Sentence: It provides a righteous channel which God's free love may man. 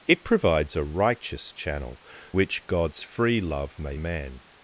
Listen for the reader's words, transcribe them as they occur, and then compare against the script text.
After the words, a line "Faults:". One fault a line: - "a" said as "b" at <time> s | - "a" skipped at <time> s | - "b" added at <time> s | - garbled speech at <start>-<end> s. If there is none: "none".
It provides a righteous channel which God's free love may man.
Faults:
none